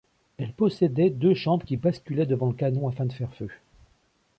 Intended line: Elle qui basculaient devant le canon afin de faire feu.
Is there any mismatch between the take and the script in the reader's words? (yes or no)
yes